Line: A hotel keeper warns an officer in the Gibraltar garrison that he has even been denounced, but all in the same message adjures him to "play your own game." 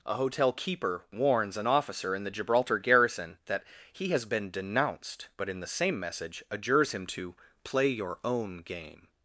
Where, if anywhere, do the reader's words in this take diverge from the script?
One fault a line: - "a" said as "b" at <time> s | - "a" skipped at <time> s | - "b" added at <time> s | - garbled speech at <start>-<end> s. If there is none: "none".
- "even" skipped at 4.2 s
- "all" skipped at 5.5 s